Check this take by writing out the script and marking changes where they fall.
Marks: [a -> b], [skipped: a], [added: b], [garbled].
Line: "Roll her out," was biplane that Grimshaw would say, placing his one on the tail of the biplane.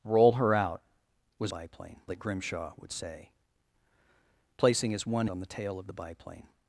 "Roll her out," was biplane that Grimshaw would say, placing his one on the tail of the biplane.